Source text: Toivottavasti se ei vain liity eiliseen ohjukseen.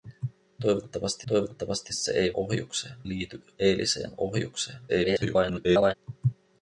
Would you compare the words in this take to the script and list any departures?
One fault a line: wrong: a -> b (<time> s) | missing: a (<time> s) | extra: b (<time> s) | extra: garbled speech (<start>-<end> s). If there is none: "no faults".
extra: toivottavasti (1.3 s)
wrong: vain -> ohjukseen (2.3 s)
extra: garbled speech (4.9-5.9 s)